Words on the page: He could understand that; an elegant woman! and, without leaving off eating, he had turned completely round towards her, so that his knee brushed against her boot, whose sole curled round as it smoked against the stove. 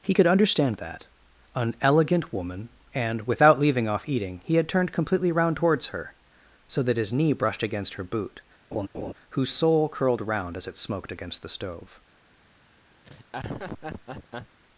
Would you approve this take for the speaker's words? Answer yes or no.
yes